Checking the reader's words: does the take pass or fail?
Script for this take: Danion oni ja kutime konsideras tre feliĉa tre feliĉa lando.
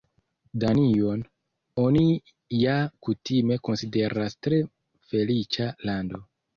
fail